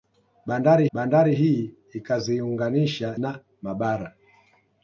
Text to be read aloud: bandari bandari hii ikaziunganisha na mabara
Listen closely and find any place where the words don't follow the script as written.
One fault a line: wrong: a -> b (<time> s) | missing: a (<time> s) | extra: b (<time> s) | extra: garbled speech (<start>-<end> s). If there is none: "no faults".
no faults